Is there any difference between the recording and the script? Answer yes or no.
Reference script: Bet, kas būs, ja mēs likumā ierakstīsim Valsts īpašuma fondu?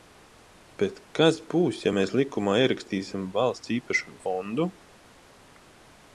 no